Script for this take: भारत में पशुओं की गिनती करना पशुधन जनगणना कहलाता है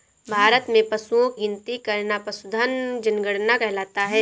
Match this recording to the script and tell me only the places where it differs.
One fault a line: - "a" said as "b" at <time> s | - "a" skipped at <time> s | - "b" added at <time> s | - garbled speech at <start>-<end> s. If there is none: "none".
- "की" skipped at 1.3 s